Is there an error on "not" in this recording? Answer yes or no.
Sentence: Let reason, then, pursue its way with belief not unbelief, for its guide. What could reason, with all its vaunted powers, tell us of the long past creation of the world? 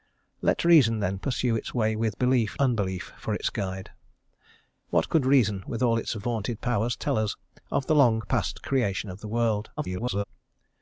yes